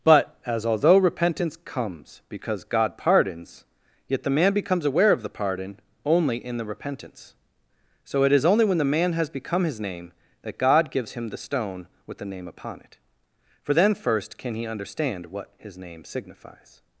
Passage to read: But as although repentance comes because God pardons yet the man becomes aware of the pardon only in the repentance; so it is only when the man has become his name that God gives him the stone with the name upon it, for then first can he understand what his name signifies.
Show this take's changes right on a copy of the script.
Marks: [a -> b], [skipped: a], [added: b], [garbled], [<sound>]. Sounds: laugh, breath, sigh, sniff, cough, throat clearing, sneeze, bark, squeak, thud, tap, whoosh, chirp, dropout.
But as although repentance comes because God pardons yet the man becomes aware of the pardon only in the repentance; so it is only when the man has become his name that God gives him the stone with the name upon it, for then first can he understand what his name signifies.